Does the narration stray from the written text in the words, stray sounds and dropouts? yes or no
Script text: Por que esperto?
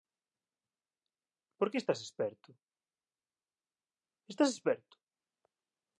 yes